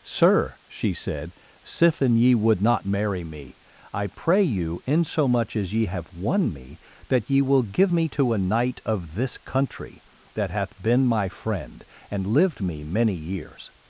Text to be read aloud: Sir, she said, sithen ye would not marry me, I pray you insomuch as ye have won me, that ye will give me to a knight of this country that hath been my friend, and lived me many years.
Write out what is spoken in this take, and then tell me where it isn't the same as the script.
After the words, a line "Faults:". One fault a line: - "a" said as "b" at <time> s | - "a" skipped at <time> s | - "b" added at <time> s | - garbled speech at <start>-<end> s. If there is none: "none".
Sir, she said, sithen ye would not marry me, I pray you insomuch as ye have won me, that ye will give me to a knight of this country that hath been my friend, and lived me many years.
Faults:
none